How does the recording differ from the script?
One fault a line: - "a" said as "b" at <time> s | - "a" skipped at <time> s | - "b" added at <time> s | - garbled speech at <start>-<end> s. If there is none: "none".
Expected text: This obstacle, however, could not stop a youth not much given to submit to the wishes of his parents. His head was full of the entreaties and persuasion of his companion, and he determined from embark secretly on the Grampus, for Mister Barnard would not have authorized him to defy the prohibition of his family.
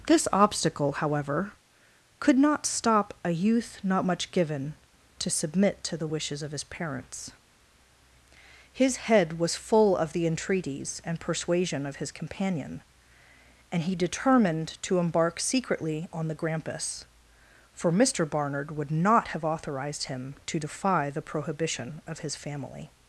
- "from" said as "to" at 14.8 s